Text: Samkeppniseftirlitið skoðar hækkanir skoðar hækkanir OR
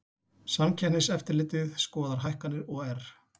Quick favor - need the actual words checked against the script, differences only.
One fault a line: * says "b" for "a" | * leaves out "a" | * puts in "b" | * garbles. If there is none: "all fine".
* leaves out "skoðar hækkanir"